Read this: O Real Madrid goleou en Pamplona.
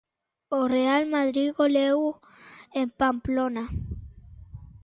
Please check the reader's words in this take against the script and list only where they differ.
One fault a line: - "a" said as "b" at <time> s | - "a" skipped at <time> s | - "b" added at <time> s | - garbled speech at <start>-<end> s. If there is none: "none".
none